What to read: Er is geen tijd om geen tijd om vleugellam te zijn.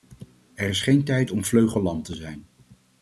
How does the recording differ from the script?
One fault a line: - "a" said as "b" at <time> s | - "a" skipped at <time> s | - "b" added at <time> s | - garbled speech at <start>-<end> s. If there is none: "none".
- "geen tijd om" skipped at 1.4 s